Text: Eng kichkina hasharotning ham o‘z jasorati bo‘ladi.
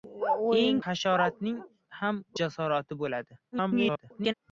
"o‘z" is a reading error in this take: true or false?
true